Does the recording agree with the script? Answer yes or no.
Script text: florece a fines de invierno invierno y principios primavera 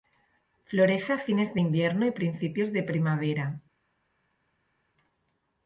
no